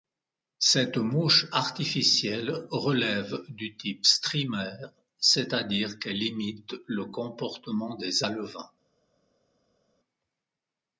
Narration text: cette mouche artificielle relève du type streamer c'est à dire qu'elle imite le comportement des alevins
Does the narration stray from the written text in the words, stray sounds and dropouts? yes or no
no